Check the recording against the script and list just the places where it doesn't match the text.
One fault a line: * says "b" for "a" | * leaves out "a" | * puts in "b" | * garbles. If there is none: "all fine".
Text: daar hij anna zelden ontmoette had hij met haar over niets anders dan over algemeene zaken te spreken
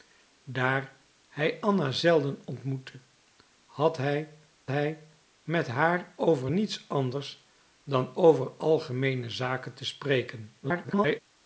* puts in "hij"
* garbles